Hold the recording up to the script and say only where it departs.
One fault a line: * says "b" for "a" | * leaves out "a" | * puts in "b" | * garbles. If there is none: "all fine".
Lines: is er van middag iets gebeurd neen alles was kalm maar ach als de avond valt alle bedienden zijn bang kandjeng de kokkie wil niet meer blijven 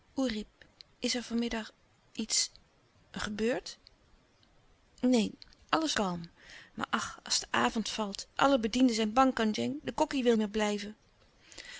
* leaves out "was"
* leaves out "niet"